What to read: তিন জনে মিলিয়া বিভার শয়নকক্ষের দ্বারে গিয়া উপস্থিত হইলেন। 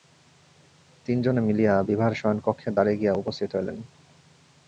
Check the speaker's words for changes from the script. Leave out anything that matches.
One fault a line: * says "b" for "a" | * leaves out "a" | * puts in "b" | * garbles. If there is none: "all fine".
all fine